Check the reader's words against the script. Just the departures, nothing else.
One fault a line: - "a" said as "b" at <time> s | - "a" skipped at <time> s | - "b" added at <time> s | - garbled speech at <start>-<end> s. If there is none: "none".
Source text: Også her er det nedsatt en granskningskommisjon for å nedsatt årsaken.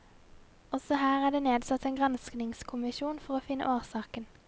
- "nedsatt" said as "finne" at 3.5 s